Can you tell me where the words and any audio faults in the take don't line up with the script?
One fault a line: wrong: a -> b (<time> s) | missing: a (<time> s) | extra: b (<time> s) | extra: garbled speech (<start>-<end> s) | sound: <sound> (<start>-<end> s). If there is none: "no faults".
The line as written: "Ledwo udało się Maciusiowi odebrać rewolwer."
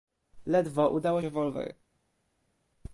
missing: się Maciusiowi odebrać (1.2 s)